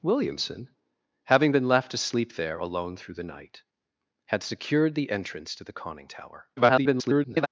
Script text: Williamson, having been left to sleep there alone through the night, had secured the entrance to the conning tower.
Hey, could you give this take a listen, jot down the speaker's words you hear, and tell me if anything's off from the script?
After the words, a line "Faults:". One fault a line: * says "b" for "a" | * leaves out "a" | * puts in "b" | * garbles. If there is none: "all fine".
Williamson, having been left to sleep there alone through the night, had secured the entrance to the conning tower. [garbled]
Faults:
* garbles